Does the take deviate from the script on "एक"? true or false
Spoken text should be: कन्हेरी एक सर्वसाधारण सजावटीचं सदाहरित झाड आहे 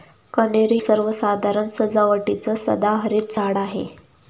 true